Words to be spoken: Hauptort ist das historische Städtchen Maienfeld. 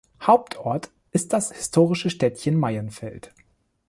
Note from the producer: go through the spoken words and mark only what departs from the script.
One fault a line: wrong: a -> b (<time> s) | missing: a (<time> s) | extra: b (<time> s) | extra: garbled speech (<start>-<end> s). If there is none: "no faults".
no faults